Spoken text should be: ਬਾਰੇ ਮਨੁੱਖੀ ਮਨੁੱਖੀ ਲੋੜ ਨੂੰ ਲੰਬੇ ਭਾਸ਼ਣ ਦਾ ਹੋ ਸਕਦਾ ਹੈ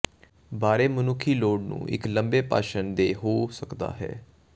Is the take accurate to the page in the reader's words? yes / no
no